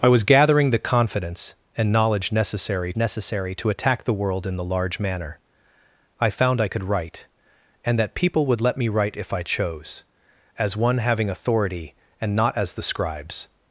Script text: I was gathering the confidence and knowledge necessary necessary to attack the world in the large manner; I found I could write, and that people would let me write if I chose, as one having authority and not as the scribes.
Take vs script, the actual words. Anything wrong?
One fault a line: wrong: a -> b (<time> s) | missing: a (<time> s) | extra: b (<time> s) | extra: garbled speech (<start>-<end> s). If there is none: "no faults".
no faults